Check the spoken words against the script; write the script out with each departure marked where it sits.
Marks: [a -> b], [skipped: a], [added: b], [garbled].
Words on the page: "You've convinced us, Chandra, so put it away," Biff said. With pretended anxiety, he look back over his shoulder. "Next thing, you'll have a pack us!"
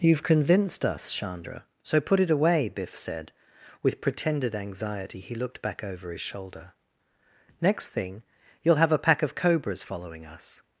"You've convinced us, Chandra, so put it away," Biff said. With pretended anxiety, he [look -> looked] back over his shoulder. "Next thing, you'll have a pack [added: of cobras following] us!"